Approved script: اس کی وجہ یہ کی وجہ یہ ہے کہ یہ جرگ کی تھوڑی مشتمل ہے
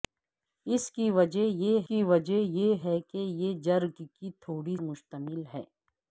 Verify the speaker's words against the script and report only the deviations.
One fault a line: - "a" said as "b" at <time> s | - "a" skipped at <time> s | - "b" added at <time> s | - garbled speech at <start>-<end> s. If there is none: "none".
none